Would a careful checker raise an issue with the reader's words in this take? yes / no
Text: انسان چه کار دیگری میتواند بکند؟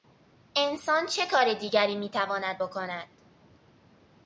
no